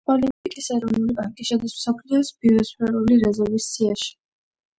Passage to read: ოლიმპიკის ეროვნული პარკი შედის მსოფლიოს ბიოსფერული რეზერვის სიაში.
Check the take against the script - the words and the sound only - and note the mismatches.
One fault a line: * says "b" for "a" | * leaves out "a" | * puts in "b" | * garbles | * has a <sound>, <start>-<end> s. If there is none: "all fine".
* has a dropout, 0.3-0.4 s